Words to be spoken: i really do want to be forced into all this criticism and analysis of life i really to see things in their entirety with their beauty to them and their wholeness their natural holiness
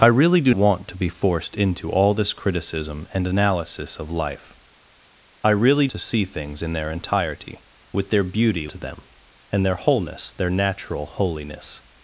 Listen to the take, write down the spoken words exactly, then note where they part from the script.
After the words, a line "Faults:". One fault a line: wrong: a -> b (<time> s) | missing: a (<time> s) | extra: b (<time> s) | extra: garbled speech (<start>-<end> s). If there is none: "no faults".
i really do want to be forced into all this criticism and analysis of life i really to see things in their entirety with their beauty to them and their wholeness their natural holiness
Faults:
no faults